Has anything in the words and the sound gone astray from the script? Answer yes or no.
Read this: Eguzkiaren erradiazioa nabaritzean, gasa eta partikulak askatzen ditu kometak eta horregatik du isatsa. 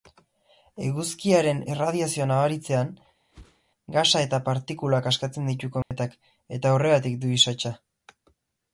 yes